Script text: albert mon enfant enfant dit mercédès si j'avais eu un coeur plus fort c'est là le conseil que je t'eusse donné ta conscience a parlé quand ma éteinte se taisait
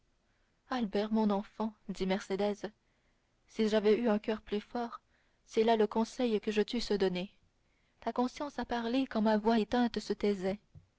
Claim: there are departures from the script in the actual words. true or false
true